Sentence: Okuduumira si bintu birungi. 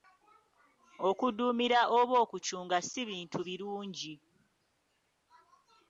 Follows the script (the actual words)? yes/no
no